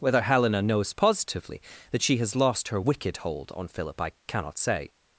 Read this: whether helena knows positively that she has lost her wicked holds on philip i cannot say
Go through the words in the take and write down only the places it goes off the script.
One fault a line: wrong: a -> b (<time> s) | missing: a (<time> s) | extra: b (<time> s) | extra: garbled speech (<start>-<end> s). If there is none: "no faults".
wrong: holds -> hold (3.2 s)